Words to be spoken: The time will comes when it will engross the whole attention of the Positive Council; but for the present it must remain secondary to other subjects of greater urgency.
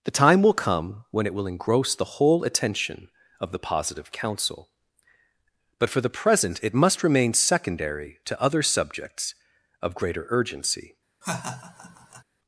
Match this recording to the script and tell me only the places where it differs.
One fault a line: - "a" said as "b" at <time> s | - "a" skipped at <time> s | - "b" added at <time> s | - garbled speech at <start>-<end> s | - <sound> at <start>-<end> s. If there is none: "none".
- "comes" said as "come" at 0.5 s
- laugh at 11.2-12.2 s